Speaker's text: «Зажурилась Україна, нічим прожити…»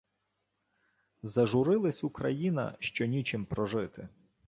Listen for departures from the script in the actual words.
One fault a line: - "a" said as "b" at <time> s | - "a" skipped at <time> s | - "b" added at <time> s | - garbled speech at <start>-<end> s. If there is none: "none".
- "що" added at 2.8 s